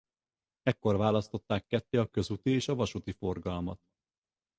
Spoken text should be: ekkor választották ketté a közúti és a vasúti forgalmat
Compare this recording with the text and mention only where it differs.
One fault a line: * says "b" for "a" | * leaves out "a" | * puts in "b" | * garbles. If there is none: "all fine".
all fine